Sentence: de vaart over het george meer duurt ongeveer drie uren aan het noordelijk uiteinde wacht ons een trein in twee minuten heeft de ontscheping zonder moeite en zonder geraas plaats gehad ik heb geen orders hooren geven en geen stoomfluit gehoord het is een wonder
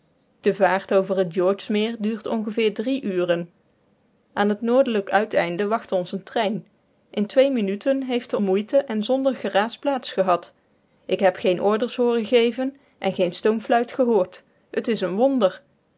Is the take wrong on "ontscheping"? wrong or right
wrong